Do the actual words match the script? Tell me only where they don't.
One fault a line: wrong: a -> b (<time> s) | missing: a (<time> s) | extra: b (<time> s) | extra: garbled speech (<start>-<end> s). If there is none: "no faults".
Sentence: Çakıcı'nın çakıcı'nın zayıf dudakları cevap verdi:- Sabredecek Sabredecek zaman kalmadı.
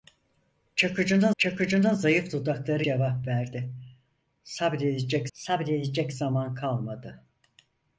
no faults